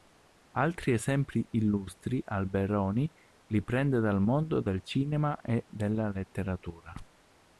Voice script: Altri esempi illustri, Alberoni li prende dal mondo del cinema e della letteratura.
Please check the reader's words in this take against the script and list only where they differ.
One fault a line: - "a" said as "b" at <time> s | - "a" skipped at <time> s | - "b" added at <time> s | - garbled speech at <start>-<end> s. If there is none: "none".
none